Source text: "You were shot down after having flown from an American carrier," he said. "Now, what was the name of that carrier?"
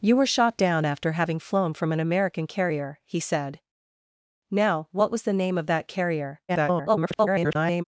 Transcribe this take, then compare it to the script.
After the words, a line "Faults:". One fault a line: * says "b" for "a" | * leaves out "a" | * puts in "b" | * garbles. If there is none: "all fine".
"You were shot down after having flown from an American carrier," he said. "Now, what was the name of that carrier?" [garbled]
Faults:
* garbles